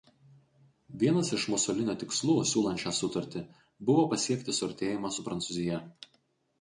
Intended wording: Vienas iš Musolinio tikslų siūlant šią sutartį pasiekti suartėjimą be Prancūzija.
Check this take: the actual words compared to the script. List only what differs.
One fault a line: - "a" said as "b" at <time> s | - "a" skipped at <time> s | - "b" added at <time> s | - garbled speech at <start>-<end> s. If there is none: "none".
- "buvo" added at 3.9 s
- "be" said as "su" at 5.1 s